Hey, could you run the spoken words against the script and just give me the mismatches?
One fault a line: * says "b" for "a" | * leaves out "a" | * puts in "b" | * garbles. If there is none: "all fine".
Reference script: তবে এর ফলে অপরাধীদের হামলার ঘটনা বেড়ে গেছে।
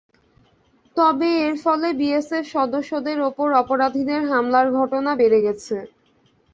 * puts in "বিএসএফ সদস্যদের ওপর"